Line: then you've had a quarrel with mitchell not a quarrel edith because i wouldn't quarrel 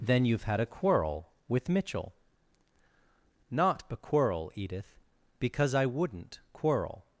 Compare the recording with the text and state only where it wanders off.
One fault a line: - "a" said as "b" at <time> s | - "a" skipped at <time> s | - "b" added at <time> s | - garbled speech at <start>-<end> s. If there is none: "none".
none